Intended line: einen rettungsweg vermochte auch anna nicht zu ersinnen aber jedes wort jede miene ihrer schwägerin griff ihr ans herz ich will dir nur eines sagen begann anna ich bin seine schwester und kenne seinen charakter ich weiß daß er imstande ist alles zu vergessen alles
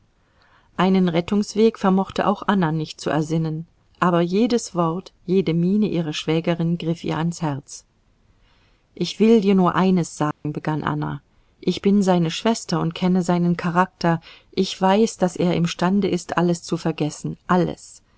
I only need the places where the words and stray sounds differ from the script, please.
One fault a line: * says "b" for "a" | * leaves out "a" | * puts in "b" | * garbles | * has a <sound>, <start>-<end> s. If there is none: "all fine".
* has a dropout, 10.3-10.4 s